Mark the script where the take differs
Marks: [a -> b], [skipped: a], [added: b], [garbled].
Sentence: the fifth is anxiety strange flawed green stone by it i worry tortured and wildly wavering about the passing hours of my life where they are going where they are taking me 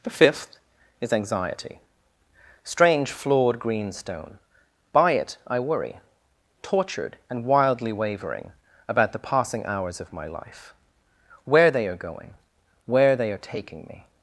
the fifth is anxiety strange flawed green stone by it i worry tortured and wildly wavering about the passing hours of my life where they are going where they are taking me